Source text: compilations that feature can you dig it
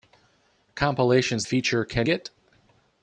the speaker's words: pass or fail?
fail